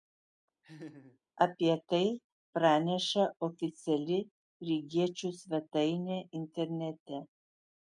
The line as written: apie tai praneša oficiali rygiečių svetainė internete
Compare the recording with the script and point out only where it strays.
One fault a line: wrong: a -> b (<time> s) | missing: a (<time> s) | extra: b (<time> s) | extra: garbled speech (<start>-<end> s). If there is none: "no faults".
no faults